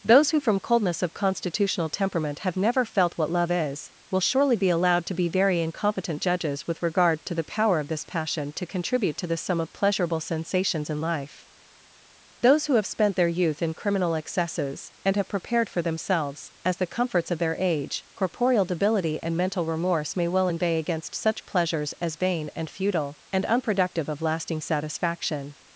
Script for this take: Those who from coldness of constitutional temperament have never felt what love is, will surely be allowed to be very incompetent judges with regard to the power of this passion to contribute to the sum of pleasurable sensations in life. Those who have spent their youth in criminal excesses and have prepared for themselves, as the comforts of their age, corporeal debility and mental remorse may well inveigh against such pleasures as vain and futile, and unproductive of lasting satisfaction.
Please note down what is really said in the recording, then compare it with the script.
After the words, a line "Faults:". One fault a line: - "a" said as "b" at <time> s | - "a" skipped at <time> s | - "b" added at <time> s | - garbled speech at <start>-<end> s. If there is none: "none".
Those who from coldness of constitutional temperament have never felt what love is, will surely be allowed to be very incompetent judges with regard to the power of this passion to contribute to the sum of pleasurable sensations in life. Those who have spent their youth in criminal excesses and have prepared for themselves, as the comforts of their age, corporeal debility and mental remorse may well inveigh against such pleasures as vain and futile, and unproductive of lasting satisfaction.
Faults:
none